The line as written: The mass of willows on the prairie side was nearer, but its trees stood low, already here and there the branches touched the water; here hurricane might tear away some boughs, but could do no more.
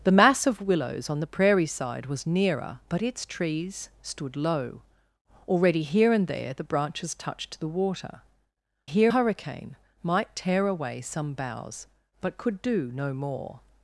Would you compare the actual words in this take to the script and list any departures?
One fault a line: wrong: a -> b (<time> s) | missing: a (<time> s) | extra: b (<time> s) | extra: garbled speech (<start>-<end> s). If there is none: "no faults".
no faults